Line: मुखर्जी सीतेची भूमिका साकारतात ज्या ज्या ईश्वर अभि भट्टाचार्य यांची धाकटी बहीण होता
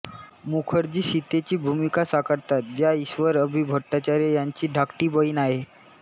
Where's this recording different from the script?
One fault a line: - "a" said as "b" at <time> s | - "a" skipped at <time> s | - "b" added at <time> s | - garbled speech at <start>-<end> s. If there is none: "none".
- "ज्या" skipped at 2.9 s
- "होता" said as "आहे" at 5.4 s